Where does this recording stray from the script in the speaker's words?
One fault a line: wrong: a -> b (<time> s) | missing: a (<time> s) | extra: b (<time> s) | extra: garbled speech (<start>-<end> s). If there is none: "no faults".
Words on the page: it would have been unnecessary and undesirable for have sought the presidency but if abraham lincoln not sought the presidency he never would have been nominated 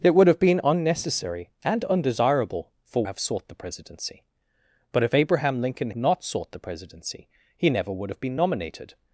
no faults